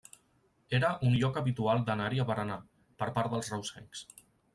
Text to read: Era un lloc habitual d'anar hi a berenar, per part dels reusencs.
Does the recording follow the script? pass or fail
pass